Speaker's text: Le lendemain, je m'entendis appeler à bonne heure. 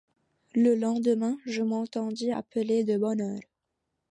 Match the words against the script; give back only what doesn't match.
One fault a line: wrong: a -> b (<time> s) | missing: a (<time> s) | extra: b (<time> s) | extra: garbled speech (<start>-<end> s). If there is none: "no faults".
wrong: à -> de (2.8 s)